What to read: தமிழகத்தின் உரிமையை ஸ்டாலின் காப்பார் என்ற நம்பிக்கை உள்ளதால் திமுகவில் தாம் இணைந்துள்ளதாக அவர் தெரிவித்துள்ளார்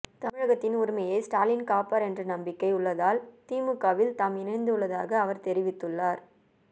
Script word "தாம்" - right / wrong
right